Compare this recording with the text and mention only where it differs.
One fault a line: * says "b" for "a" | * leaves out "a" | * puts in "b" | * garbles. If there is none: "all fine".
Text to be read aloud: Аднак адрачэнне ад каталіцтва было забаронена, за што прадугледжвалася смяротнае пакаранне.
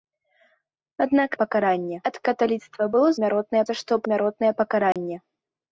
* says "пакаранне" for "адрачэнне"
* says "смяротнае" for "забаронена"
* leaves out "прадугледжвалася"